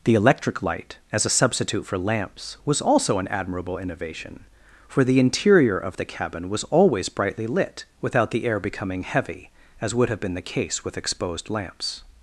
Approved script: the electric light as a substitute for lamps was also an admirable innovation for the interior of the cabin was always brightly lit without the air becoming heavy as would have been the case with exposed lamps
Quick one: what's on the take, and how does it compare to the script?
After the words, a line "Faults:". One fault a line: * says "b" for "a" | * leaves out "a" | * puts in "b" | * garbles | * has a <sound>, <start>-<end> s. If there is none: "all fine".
the electric light as a substitute for lamps was also an admirable innovation for the interior of the cabin was always brightly lit without the air becoming heavy as would have been the case with exposed lamps
Faults:
all fine